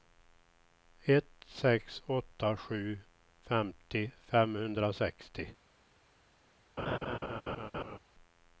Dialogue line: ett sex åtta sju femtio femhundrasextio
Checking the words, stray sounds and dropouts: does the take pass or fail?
fail